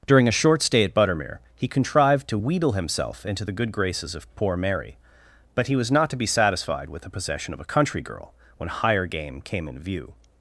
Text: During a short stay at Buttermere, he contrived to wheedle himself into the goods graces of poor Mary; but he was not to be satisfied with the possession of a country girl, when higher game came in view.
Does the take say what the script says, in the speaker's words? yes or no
no